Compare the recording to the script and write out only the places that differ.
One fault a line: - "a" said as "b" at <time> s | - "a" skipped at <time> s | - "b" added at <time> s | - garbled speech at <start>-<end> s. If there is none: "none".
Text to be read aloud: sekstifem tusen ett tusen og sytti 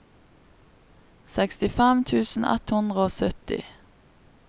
- "tusen" said as "hundre" at 2.8 s